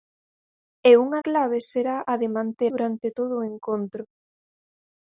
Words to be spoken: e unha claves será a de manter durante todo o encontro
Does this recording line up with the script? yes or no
yes